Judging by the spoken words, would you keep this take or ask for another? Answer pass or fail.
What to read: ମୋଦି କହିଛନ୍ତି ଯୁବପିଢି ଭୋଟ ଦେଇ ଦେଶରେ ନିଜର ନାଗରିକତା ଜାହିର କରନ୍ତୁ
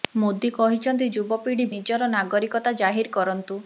fail